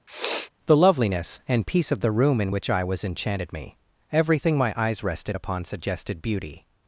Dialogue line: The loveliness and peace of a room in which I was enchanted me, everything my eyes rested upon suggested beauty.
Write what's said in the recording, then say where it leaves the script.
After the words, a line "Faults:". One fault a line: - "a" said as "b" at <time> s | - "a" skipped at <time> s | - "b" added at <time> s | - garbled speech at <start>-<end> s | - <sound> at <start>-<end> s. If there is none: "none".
The loveliness and peace of the room in which I was enchanted me, everything my eyes rested upon suggested beauty.
Faults:
- sniff at 0.1-0.5 s
- "a" said as "the" at 2.0 s